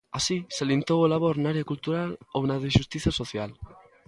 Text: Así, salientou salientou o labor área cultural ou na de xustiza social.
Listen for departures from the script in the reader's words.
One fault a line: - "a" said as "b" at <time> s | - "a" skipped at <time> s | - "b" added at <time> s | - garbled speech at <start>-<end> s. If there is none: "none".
- "salientou" skipped at 1.0 s
- "na" added at 1.4 s